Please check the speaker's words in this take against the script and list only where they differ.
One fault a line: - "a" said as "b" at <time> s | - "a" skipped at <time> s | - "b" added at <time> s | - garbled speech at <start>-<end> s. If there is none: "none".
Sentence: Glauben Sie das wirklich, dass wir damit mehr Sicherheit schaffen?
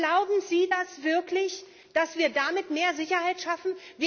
none